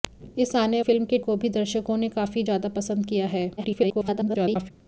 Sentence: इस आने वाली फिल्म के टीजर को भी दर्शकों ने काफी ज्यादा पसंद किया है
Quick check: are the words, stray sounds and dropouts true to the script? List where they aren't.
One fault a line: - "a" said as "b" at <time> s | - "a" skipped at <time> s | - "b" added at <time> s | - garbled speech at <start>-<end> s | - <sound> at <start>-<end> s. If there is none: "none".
- "वाली" skipped at 0.8 s
- "टीजर" skipped at 1.2 s
- garbled speech at 3.6-4.7 s